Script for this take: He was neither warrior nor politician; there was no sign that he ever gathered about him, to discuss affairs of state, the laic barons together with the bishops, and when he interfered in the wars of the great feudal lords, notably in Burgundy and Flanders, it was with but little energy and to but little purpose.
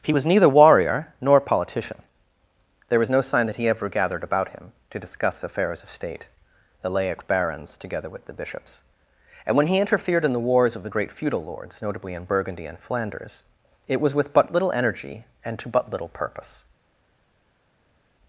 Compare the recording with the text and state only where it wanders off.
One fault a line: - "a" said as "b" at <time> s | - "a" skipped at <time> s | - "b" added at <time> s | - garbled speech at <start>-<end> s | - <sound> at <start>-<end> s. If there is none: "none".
none